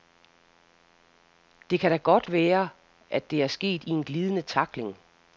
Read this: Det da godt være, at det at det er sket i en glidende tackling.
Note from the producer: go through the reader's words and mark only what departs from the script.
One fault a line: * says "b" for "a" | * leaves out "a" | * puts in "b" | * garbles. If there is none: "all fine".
* puts in "kan"
* leaves out "at det"